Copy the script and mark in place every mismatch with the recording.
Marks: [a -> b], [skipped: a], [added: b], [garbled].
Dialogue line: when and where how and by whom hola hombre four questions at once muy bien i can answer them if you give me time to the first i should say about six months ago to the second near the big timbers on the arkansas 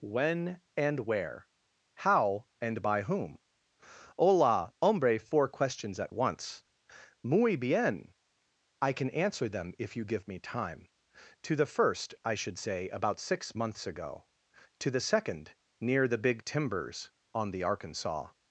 when and where how and by whom hola hombre four questions at once muy bien i can answer them if you give me time to the first i should say about six months ago to the second near the big timbers on the arkansas